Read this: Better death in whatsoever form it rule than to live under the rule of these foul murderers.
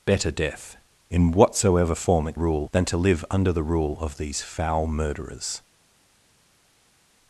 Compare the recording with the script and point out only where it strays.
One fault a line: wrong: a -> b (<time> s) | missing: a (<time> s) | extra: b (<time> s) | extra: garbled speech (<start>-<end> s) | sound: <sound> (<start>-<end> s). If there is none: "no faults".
no faults